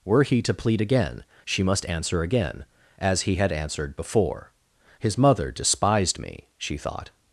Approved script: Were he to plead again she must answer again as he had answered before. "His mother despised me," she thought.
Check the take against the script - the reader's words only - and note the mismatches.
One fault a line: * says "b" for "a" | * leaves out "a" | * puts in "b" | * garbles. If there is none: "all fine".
all fine